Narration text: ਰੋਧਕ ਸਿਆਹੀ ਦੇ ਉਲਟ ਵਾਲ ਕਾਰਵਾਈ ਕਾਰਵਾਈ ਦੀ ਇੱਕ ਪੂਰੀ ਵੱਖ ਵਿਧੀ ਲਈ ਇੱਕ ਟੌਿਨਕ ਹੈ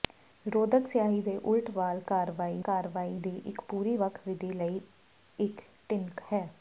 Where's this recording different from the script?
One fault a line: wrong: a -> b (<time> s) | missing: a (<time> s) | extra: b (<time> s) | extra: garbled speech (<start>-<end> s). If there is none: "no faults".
no faults